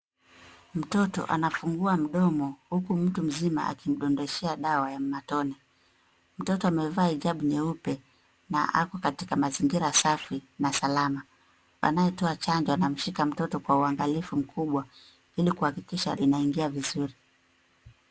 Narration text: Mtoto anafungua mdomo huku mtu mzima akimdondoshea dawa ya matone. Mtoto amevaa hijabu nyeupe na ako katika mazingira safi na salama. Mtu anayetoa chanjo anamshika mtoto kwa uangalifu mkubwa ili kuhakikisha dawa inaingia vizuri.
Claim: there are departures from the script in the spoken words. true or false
true